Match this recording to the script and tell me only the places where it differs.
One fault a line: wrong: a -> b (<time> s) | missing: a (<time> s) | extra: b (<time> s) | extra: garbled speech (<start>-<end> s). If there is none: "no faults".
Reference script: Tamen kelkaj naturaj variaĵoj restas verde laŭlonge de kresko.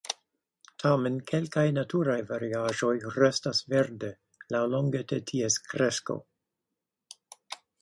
extra: ties (5.3 s)